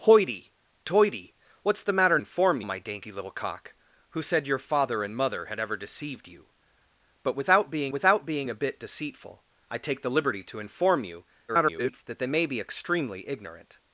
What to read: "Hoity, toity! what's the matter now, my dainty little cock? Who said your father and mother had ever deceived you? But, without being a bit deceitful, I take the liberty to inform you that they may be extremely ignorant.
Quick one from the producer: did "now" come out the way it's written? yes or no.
no